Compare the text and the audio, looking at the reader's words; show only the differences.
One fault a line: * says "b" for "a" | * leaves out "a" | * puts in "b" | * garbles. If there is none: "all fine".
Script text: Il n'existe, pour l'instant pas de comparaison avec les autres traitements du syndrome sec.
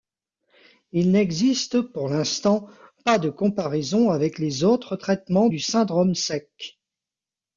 all fine